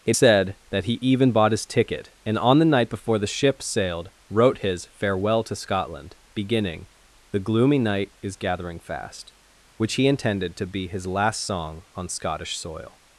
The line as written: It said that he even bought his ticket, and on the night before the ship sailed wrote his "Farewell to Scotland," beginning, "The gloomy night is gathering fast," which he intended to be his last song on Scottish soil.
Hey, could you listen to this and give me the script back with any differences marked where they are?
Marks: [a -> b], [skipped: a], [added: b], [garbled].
It said that he even bought his ticket, and on the night before the ship sailed wrote his "Farewell to Scotland," beginning, "The gloomy night is gathering fast," which he intended to be his last song on Scottish soil.